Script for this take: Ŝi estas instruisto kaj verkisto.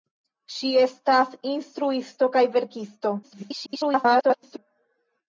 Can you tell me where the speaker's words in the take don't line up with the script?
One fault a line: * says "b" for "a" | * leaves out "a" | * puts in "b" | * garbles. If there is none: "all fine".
* garbles